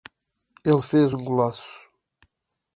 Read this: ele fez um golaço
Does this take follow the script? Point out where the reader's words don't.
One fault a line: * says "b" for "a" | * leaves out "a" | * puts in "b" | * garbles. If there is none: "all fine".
all fine